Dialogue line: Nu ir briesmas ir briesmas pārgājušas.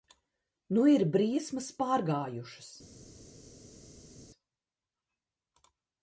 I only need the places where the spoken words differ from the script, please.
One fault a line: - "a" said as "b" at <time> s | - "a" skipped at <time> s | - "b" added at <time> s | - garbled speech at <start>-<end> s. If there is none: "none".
- "ir briesmas" skipped at 1.7 s